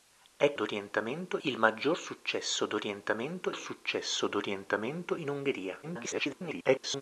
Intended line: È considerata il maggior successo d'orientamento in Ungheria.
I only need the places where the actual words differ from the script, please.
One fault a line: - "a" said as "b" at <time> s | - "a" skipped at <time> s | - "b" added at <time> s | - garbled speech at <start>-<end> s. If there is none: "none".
- "considerata" said as "d'orientamento" at 0.5 s
- "successo d'orientamento" added at 3.5 s
- garbled speech at 5.8-7.0 s